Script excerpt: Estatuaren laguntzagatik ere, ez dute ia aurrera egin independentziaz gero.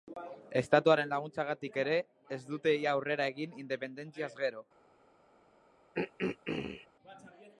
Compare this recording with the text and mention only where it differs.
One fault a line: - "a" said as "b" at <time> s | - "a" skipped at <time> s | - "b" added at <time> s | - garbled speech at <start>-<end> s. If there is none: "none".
none